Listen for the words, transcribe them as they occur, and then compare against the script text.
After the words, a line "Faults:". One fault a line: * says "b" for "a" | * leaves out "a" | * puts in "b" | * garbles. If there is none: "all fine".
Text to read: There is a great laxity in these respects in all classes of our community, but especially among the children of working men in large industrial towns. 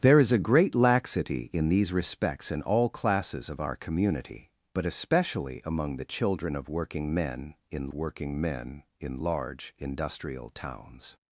There is a great laxity in these respects in all classes of our community, but especially among the children of working men in working men in large industrial towns.
Faults:
* puts in "working men in"